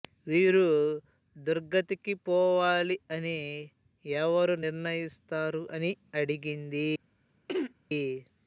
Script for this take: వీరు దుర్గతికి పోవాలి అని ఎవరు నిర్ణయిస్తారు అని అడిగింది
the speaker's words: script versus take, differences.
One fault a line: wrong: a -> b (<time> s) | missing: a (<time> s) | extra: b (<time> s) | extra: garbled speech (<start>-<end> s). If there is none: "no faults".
no faults